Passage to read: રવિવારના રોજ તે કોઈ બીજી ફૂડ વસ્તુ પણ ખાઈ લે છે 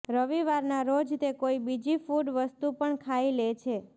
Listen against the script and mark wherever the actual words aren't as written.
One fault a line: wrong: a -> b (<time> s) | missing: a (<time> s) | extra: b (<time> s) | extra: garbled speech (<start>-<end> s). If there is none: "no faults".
no faults